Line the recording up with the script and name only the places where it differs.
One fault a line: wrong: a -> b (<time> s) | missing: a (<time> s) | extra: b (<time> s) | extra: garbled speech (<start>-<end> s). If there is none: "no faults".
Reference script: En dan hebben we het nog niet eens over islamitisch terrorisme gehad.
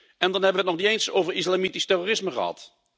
no faults